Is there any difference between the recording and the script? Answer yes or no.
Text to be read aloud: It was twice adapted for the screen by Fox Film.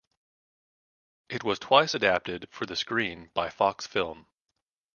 no